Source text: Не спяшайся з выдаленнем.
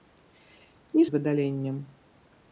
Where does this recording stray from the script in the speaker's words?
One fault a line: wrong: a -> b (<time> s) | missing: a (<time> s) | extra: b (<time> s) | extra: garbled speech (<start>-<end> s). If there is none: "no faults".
missing: спяшайся (1.0 s)